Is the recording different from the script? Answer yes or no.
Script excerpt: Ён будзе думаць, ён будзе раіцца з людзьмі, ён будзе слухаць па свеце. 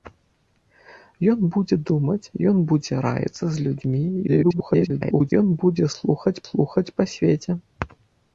yes